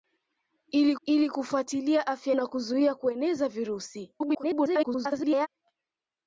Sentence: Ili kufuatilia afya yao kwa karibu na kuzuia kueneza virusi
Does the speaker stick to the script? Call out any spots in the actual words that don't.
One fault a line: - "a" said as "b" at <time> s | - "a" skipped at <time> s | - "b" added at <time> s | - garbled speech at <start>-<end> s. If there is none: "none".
- "ili" added at 1.1 s
- "yao kwa karibu" skipped at 2.4 s
- garbled speech at 4.2-5.5 s